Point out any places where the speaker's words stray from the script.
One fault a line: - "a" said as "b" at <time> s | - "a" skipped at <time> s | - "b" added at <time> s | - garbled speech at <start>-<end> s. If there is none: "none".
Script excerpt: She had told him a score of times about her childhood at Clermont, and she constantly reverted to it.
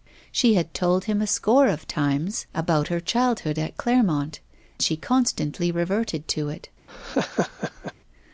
- "and" skipped at 4.4 s